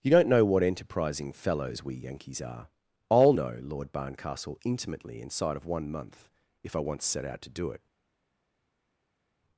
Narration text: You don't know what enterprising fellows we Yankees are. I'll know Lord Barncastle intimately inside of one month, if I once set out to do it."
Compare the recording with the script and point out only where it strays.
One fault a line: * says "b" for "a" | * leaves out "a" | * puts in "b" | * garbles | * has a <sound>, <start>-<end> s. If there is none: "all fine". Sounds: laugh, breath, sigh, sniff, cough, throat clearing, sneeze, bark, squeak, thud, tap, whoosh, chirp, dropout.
all fine